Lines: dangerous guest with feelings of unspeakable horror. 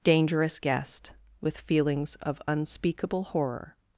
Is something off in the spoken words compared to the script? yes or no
no